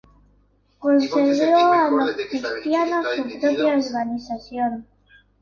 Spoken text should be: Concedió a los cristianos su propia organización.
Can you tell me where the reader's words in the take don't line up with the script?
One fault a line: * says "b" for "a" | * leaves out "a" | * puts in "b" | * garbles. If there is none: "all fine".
all fine